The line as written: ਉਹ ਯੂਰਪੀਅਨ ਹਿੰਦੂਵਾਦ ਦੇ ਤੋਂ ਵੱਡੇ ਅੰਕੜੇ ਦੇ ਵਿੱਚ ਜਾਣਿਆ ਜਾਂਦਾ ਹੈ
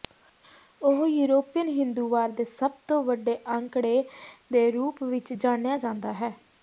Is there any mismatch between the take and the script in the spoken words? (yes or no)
yes